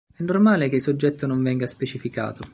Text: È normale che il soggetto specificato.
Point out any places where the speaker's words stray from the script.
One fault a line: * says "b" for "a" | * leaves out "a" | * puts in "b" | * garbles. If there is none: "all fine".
* puts in "non venga"